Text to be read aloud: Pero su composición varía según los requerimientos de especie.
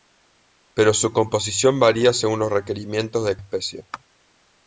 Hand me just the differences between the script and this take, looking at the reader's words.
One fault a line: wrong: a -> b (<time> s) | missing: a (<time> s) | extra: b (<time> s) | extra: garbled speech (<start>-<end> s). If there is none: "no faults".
no faults